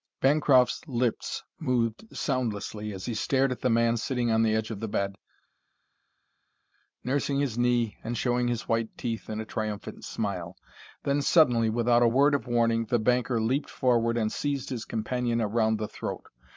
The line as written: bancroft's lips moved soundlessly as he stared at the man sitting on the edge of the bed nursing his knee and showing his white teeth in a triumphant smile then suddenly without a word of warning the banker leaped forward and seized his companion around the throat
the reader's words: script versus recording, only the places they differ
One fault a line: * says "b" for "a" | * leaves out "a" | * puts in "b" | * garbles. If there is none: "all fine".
all fine